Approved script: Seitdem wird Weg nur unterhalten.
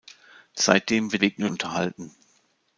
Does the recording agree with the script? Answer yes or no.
yes